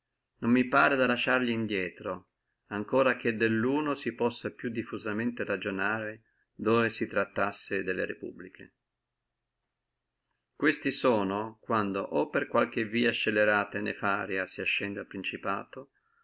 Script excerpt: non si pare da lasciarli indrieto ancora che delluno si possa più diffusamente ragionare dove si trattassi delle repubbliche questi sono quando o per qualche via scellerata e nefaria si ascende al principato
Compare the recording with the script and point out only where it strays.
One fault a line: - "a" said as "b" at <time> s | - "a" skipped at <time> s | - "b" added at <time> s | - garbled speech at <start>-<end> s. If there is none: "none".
- "si" said as "mi" at 0.5 s